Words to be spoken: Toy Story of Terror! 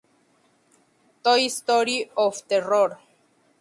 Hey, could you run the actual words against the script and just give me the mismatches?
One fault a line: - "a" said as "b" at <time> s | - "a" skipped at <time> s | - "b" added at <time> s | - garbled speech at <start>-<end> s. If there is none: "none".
none